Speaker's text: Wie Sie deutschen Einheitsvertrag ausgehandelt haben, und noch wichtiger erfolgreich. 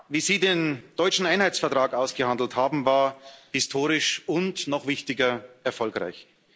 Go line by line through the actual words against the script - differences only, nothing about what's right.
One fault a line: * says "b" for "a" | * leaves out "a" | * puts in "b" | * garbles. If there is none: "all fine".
* puts in "den"
* puts in "war historisch"